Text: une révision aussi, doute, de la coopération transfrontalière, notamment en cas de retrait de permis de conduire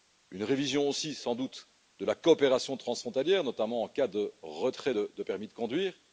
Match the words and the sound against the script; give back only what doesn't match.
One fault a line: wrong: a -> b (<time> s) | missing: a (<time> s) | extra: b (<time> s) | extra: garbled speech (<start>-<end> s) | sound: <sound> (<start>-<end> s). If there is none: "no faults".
extra: sans (1.1 s)